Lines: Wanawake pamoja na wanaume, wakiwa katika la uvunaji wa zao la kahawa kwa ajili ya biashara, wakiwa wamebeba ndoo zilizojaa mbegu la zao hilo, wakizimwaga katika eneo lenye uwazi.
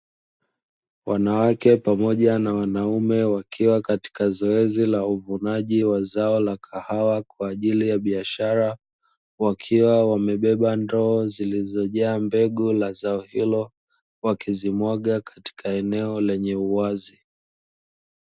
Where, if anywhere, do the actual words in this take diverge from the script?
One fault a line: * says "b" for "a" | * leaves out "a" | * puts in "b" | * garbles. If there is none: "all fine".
* puts in "zoezi"